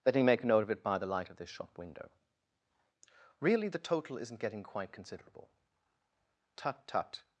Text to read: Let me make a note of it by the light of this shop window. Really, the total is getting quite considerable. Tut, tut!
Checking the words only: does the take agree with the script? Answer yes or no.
no